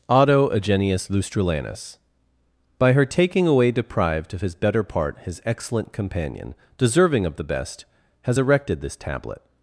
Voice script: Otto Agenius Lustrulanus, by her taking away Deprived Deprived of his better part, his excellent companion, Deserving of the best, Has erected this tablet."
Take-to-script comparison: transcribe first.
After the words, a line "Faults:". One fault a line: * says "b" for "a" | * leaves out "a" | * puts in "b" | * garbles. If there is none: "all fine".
Otto Agenius Lustrulanus, by her taking away Deprived of his better part, his excellent companion, Deserving of the best, Has erected this tablet."
Faults:
* leaves out "Deprived"